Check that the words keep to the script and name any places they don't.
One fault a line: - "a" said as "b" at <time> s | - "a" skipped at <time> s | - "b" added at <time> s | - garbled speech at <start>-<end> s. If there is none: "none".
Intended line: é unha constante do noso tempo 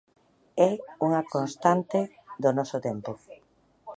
none